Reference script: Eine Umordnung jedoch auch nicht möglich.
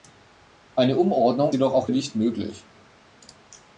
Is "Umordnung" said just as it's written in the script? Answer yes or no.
yes